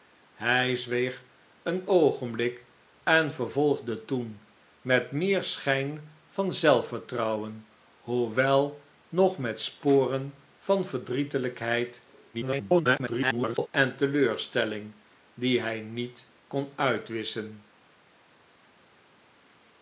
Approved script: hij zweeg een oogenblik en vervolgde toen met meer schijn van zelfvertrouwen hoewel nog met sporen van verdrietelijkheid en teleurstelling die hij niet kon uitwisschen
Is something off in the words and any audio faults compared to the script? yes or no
yes